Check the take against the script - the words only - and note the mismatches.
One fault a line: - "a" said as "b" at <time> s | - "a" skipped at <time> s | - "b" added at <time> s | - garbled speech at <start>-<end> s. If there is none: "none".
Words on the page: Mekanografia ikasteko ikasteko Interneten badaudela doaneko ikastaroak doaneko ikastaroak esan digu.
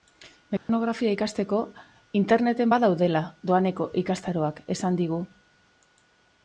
- "ikasteko" skipped at 1.6 s
- "doaneko ikastaroak" skipped at 4.6 s